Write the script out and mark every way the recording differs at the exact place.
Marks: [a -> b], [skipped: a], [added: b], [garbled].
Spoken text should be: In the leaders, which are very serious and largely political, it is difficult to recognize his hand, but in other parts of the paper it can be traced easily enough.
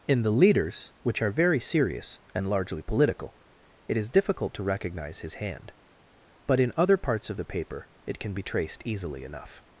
In the leaders, which are very serious and largely political, it is difficult to recognize his hand, but in other parts of the paper it can be traced easily enough.